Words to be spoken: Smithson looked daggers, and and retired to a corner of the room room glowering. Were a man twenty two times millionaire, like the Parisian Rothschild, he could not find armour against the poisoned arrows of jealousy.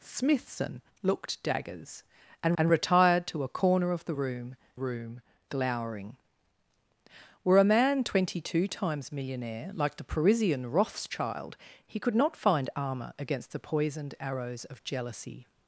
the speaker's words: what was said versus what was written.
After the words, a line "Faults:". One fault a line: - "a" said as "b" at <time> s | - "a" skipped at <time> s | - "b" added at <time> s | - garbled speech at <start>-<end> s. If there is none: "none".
Smithson looked daggers, and and retired to a corner of the room room glowering. Were a man twenty two times millionaire, like the Parisian Rothschild, he could not find armour against the poisoned arrows of jealousy.
Faults:
none